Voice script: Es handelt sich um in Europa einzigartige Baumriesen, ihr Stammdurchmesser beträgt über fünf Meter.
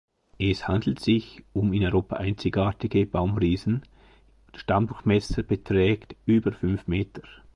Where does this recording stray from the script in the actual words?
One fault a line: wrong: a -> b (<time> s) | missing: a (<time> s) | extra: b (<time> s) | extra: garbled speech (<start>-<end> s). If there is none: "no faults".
missing: ihr (3.8 s)